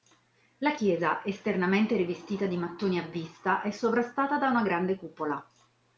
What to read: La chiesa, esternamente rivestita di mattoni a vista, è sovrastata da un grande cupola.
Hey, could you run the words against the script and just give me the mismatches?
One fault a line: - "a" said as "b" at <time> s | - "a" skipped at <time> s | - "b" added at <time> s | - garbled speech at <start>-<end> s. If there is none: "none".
- "un" said as "una" at 4.5 s